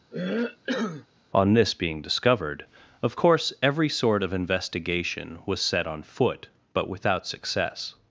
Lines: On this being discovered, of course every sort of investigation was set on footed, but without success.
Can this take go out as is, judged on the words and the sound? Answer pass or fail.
fail